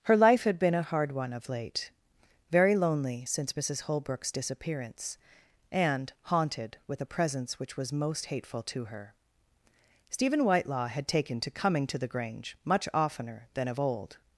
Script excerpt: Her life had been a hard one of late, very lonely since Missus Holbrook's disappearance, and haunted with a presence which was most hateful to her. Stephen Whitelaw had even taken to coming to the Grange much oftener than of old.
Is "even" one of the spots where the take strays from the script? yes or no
yes